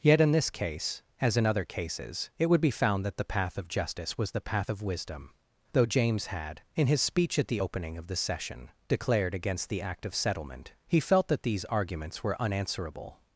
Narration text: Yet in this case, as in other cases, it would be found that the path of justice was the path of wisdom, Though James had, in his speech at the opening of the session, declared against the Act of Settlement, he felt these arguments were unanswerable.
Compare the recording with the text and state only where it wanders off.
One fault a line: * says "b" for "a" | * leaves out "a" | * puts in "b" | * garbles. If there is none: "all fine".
* puts in "that"